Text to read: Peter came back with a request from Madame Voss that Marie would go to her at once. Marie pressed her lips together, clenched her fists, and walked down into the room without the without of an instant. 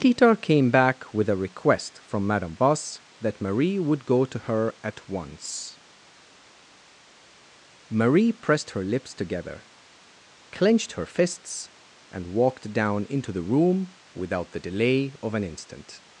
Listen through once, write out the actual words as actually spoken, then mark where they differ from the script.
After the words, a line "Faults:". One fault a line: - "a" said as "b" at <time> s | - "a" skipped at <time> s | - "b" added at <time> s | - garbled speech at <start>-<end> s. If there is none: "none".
Peter came back with a request from Madame Voss that Marie would go to her at once. Marie pressed her lips together, clenched her fists, and walked down into the room without the delay of an instant.
Faults:
- "without" said as "delay" at 14.6 s